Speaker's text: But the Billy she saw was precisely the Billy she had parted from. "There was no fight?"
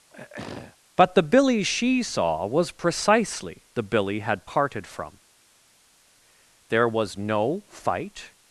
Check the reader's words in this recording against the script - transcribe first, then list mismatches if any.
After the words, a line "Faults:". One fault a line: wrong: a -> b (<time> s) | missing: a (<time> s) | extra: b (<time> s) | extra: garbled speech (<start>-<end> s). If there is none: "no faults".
But the Billy she saw was precisely the Billy had parted from. "There was no fight?"
Faults:
missing: she (4.2 s)